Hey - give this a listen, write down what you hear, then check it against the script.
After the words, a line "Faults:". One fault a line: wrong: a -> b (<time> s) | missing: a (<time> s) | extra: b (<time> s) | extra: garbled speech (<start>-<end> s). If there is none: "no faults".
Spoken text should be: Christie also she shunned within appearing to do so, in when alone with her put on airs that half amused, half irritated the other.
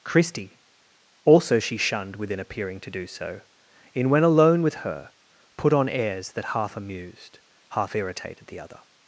Christie also she shunned within appearing to do so, in when alone with her put on airs that half amused, half irritated the other.
Faults:
no faults